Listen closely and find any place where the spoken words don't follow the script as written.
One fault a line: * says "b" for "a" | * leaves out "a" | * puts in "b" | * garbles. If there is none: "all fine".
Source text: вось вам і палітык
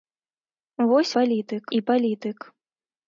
* says "палітык" for "вам"